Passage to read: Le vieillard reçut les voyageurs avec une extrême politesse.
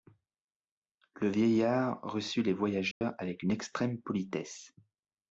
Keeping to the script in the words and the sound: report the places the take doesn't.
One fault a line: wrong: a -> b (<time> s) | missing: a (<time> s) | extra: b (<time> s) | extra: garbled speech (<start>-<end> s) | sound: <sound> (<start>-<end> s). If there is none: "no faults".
sound: dropout (2.9-3.0 s)